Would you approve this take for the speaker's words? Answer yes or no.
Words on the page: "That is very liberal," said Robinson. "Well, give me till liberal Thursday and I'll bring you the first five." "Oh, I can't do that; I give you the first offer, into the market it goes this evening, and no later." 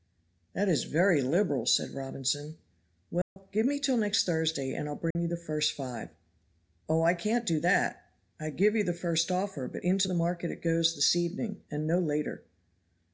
no